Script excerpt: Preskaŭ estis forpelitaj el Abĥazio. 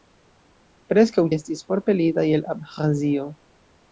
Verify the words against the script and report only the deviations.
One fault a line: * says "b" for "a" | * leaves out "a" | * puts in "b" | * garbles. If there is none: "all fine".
all fine